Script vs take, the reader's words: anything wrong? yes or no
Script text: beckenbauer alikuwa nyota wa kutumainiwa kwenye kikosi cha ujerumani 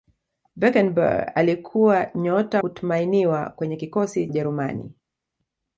yes